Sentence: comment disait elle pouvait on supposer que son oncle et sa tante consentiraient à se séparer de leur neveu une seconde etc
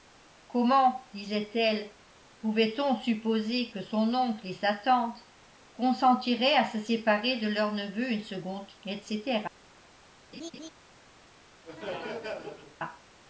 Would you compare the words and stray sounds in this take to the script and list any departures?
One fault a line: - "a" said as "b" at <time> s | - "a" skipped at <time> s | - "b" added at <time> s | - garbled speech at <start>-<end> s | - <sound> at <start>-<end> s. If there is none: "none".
- laugh at 10.3-10.7 s
- laugh at 11.6-12.8 s